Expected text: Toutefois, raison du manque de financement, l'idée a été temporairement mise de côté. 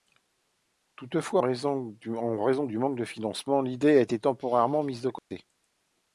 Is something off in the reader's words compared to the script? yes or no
no